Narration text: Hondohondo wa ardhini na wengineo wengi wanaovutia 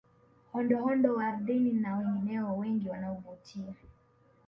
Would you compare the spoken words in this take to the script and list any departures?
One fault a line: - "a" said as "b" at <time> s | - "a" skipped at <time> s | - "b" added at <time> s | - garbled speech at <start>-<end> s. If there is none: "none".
none